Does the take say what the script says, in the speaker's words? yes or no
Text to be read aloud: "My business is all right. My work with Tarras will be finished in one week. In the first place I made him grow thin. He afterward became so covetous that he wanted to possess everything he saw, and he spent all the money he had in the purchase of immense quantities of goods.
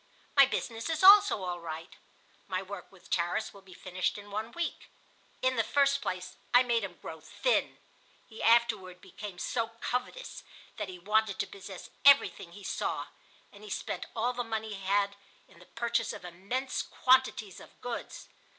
no